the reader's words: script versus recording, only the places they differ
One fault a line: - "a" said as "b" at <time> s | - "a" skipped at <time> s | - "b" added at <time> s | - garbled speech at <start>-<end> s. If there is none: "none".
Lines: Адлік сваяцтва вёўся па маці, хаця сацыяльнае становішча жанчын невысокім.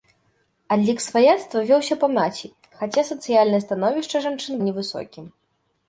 none